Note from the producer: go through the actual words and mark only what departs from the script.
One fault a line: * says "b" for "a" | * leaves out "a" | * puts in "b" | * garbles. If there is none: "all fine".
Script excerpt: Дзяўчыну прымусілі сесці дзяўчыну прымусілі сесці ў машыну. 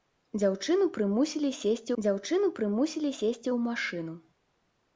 all fine